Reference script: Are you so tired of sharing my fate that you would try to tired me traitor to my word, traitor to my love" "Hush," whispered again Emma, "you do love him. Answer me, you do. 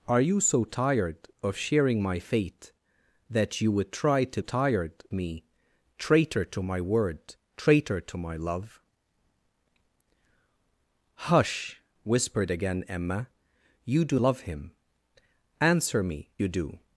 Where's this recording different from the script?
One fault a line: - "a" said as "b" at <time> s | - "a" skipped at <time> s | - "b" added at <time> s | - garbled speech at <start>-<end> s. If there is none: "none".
none